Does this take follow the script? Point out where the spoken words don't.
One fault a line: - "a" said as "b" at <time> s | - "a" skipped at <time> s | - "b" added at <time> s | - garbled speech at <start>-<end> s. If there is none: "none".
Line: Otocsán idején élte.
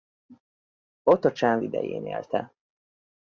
none